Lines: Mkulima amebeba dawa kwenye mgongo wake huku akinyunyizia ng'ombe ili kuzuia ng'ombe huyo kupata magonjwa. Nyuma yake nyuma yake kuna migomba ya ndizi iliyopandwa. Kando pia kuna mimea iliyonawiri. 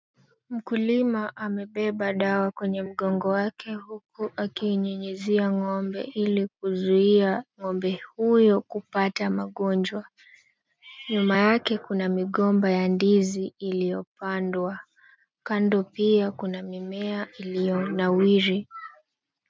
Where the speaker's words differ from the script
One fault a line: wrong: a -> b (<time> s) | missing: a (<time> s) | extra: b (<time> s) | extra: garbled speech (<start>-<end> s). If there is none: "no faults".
missing: nyuma yake (11.8 s)